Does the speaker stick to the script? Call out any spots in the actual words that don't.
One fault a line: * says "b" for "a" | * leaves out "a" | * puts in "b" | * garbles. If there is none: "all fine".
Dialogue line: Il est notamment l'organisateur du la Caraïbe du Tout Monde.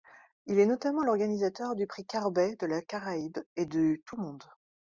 * puts in "prix Carbet de"
* puts in "et"